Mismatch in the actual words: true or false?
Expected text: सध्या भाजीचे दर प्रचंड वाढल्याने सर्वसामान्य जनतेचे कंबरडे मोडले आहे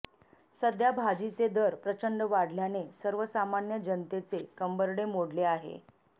false